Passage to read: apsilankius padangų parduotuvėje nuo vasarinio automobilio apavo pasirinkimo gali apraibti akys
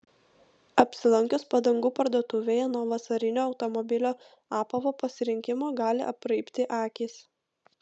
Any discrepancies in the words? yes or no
no